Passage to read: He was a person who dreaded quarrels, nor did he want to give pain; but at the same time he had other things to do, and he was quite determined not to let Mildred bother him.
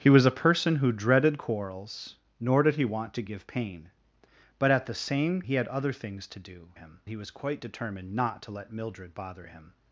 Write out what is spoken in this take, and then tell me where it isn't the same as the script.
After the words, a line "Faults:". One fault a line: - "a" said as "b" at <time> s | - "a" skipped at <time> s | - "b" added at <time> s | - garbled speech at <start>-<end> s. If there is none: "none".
He was a person who dreaded quarrels, nor did he want to give pain; but at the same he had other things to do, him he was quite determined not to let Mildred bother him.
Faults:
- "time" skipped at 5.4 s
- "and" said as "him" at 6.7 s